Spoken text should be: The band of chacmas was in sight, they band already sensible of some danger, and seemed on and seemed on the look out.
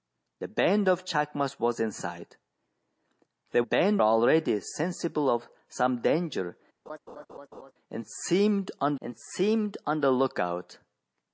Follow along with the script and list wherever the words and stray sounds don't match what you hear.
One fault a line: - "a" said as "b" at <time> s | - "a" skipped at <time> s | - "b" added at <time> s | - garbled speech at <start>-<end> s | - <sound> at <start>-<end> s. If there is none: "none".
- laugh at 6.9-7.7 s